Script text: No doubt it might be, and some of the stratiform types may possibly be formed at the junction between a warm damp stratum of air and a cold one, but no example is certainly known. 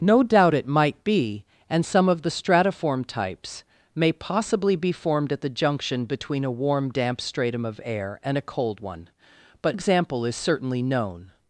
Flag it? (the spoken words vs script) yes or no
yes